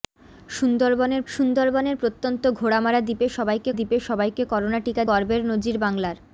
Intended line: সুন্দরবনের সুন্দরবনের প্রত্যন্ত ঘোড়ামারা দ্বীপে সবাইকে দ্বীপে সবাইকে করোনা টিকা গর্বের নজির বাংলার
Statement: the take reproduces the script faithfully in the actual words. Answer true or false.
true